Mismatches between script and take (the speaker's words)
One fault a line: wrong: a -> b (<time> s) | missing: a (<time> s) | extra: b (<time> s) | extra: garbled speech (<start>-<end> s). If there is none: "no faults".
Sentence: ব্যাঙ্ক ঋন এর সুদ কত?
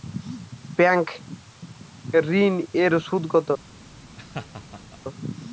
no faults